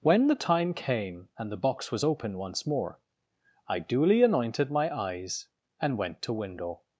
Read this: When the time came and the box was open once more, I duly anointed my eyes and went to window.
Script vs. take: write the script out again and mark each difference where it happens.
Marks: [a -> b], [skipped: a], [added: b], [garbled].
When the time came and the box was open once more, I duly anointed my eyes and went to window.